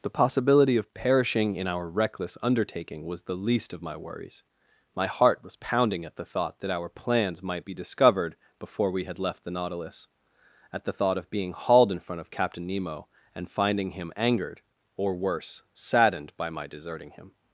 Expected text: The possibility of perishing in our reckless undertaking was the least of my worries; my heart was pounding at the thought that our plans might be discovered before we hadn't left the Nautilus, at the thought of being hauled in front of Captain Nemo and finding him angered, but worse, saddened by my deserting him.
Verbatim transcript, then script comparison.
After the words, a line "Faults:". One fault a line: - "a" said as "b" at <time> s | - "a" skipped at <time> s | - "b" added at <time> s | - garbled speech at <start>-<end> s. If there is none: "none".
The possibility of perishing in our reckless undertaking was the least of my worries; my heart was pounding at the thought that our plans might be discovered before we had left the Nautilus, at the thought of being hauled in front of Captain Nemo and finding him angered, or worse, saddened by my deserting him.
Faults:
- "hadn't" said as "had" at 9.0 s
- "but" said as "or" at 15.0 s